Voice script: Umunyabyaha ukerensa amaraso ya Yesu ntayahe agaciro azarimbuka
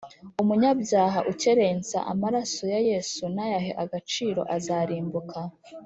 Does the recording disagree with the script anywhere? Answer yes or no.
no